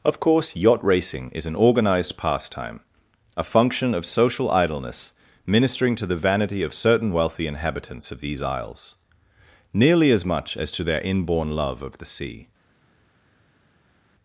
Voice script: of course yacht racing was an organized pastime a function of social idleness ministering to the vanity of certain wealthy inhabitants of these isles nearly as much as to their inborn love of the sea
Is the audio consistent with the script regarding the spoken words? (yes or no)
no